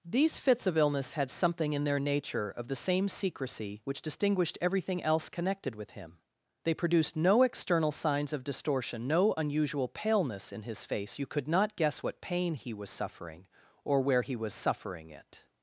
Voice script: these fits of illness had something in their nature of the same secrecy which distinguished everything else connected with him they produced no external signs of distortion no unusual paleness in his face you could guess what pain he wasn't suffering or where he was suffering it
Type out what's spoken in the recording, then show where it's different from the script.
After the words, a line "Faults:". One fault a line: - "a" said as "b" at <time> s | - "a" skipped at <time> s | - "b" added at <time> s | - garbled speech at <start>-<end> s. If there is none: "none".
these fits of illness had something in their nature of the same secrecy which distinguished everything else connected with him they produced no external signs of distortion no unusual paleness in his face you could not guess what pain he was suffering or where he was suffering it
Faults:
- "not" added at 11.5 s
- "wasn't" said as "was" at 12.7 s